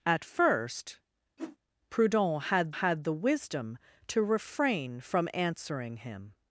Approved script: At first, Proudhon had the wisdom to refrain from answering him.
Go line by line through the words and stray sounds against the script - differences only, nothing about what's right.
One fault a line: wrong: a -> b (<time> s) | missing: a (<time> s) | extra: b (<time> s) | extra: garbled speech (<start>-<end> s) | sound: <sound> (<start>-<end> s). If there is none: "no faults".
sound: whoosh (1.4-1.6 s)
extra: had (2.7 s)